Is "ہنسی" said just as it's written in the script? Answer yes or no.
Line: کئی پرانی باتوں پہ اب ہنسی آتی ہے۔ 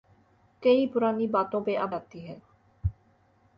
no